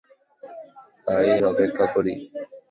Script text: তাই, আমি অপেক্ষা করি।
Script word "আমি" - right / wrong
wrong